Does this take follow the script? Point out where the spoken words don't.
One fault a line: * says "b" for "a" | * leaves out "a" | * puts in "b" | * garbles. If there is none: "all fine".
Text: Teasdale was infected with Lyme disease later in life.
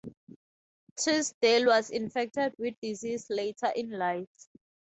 * leaves out "Lyme"